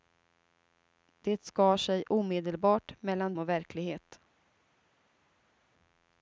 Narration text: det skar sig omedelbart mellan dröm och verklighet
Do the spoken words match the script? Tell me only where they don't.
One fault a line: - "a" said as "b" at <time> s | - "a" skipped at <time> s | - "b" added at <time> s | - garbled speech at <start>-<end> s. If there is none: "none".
- "dröm" skipped at 3.4 s